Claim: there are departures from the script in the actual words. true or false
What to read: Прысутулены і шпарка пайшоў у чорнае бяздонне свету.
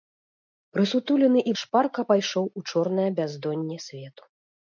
false